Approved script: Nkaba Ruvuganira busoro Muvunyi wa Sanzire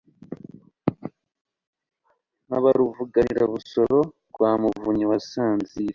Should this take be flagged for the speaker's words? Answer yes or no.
yes